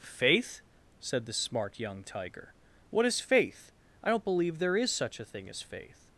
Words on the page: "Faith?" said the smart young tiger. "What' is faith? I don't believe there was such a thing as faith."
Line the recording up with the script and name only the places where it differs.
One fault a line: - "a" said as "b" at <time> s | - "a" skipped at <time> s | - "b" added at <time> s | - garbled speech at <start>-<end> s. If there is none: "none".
- "was" said as "is" at 4.8 s